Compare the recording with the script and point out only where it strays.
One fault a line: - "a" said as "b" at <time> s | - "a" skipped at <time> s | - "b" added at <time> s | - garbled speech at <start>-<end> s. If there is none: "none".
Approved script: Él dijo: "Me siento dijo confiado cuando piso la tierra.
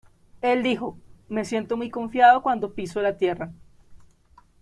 - "dijo" said as "muy" at 1.8 s